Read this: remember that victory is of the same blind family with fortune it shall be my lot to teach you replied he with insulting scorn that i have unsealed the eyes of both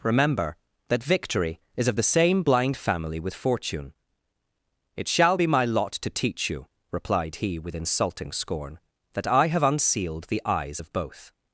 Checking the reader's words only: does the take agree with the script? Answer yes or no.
yes